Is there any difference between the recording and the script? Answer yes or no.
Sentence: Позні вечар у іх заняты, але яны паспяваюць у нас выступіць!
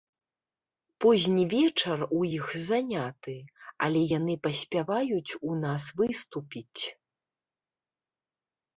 no